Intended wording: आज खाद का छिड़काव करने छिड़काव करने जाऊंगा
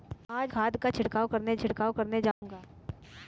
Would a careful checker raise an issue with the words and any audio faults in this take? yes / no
yes